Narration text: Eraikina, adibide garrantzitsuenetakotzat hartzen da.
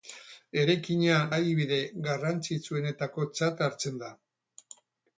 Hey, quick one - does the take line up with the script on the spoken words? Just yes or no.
yes